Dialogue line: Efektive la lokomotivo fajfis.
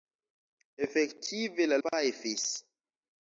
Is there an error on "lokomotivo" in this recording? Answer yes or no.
yes